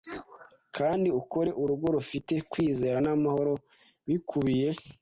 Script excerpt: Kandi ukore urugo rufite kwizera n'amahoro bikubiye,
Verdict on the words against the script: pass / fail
pass